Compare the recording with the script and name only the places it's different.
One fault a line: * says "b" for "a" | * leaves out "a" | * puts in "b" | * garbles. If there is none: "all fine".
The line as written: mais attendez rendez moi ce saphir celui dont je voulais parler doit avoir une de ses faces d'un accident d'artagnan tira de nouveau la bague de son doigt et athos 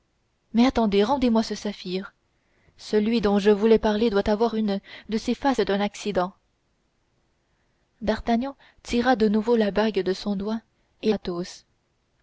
all fine